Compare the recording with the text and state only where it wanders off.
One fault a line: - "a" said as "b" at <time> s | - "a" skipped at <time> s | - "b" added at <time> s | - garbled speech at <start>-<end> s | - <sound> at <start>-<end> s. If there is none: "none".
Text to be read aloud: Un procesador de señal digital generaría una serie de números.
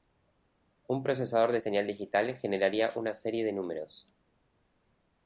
none